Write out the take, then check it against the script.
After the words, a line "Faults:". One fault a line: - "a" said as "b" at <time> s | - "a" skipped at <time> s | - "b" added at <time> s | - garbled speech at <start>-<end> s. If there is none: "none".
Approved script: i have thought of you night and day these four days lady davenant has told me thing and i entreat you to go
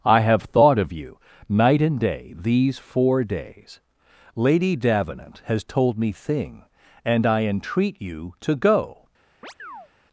i have thought of you night and day these four days lady davenant has told me thing and i entreat you to go
Faults:
none